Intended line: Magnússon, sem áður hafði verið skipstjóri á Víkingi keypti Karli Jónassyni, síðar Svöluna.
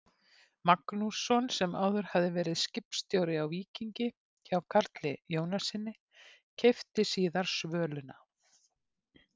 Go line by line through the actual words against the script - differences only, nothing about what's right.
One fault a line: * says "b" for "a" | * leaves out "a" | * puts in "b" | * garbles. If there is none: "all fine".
* says "hjá" for "keypti"
* puts in "keypti"